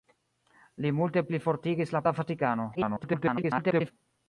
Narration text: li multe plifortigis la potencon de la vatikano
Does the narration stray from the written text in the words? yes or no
yes